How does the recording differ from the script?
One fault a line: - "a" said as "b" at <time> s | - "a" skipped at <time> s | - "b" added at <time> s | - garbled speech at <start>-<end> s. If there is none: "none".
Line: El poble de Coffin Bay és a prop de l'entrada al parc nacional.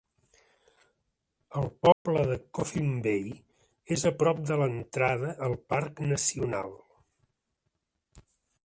none